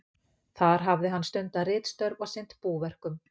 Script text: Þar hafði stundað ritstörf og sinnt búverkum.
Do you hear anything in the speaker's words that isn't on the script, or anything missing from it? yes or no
yes